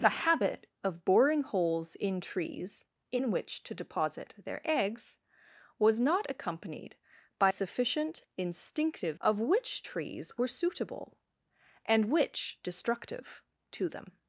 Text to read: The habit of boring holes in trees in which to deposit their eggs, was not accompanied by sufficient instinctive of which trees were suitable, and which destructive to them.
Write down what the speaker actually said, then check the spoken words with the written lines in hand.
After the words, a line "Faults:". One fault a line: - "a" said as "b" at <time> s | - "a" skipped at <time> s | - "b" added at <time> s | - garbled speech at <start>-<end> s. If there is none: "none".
The habit of boring holes in trees in which to deposit their eggs, was not accompanied by sufficient instinctive of which trees were suitable, and which destructive to them.
Faults:
none